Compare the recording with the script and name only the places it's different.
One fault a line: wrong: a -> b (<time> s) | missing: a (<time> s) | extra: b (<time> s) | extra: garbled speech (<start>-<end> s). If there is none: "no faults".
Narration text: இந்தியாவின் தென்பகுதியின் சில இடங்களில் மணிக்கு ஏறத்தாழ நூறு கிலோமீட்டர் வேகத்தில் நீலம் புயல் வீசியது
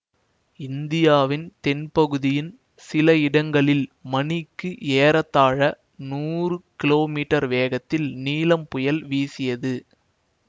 no faults